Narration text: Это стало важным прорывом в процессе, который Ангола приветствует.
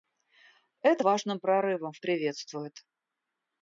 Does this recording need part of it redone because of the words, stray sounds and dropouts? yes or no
yes